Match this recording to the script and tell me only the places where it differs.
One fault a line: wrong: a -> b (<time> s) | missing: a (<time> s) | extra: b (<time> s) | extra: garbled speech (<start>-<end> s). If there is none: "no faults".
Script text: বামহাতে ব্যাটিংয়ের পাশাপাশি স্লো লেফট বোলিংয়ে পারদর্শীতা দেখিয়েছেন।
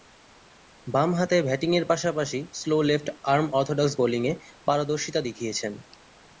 extra: আর্ম অর্থোডক্স (3.2 s)